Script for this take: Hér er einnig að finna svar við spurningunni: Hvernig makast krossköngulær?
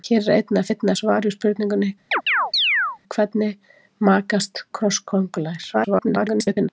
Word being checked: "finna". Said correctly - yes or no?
no